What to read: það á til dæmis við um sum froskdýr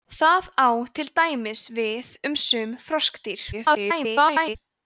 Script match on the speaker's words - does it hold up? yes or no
no